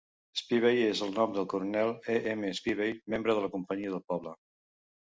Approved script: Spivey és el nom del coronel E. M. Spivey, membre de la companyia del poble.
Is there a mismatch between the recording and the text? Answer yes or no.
no